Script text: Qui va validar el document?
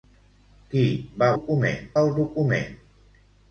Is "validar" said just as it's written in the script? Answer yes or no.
no